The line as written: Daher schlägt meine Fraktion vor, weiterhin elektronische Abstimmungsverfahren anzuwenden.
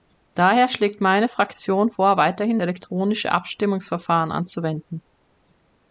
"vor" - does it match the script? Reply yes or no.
yes